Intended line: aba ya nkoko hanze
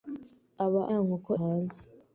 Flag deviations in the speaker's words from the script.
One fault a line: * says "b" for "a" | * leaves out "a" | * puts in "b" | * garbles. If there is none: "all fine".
all fine